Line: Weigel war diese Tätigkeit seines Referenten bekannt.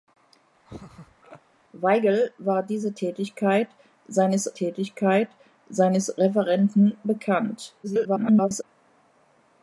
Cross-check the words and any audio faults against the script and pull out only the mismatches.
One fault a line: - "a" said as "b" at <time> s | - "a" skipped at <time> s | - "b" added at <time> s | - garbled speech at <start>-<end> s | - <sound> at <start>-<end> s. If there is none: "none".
- laugh at 0.7-1.4 s
- "Tätigkeit seines" added at 4.5 s
- garbled speech at 7.8-8.6 s